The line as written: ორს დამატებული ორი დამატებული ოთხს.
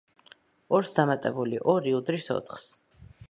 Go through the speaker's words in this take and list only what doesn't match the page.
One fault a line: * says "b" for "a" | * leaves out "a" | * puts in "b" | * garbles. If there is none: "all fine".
* says "უდრის" for "დამატებული"